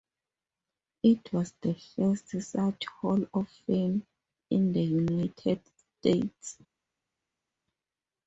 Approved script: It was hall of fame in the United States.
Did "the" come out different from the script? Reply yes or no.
no